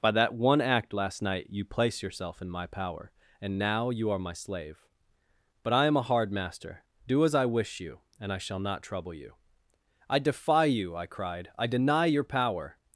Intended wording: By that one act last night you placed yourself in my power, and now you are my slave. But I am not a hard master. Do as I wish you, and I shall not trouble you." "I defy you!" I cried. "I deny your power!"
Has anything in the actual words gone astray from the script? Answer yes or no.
yes